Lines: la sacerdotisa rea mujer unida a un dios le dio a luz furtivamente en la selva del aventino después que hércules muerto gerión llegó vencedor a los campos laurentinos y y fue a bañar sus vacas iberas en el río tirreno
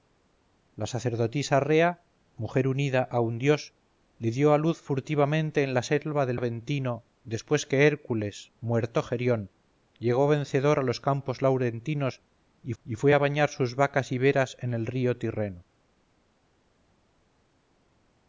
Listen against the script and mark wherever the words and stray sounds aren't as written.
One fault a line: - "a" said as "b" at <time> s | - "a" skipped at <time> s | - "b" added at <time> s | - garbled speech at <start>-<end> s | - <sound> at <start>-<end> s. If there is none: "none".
none